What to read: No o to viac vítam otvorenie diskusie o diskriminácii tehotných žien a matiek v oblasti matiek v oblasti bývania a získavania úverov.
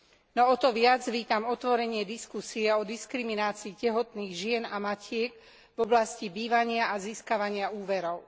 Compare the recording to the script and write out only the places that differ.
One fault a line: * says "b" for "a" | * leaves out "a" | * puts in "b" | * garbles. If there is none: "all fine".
* leaves out "matiek v oblasti"